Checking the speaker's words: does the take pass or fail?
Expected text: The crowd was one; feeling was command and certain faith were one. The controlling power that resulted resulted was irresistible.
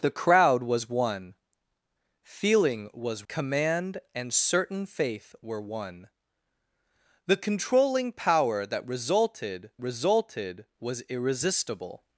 pass